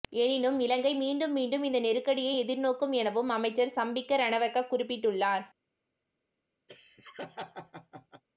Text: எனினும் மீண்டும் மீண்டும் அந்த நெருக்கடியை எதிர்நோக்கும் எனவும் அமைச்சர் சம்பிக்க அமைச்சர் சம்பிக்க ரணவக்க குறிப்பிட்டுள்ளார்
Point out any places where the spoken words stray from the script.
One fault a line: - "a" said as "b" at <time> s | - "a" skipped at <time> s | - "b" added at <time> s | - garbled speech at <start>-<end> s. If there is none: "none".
- "இலங்கை" added at 0.6 s
- "அந்த" said as "இந்த" at 1.6 s
- "அமைச்சர் சம்பிக்க" skipped at 4.2 s